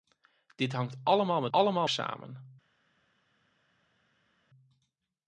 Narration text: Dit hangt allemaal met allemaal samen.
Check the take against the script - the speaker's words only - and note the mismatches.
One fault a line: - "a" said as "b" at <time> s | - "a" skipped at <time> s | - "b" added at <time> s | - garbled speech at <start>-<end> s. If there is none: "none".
none